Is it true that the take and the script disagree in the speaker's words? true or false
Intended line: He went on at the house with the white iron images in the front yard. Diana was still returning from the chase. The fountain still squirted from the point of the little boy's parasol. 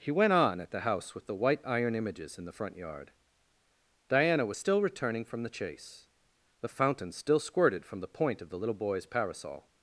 false